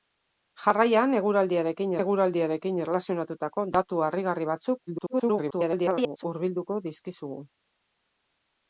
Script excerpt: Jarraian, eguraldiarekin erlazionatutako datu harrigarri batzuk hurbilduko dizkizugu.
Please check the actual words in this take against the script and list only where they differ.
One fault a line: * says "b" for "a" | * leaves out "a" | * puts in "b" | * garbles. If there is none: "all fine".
* puts in "eguraldiarekin"
* garbles